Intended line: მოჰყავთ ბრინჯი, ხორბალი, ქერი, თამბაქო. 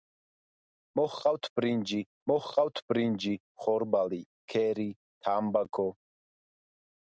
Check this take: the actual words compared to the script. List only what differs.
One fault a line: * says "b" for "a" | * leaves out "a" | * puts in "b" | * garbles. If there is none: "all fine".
* puts in "მოჰყავთ ბრინჯი"